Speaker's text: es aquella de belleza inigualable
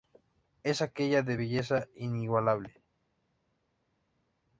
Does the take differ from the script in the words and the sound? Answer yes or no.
no